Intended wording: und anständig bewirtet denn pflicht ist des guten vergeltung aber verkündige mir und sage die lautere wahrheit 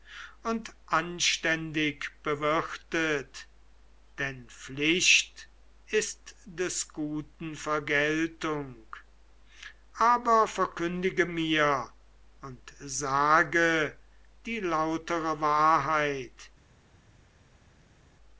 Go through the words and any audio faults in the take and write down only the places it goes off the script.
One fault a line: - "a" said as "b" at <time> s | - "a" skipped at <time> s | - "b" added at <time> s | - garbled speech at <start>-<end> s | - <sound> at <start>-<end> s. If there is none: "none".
none